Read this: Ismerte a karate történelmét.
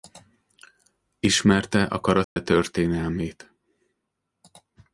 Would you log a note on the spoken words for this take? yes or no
no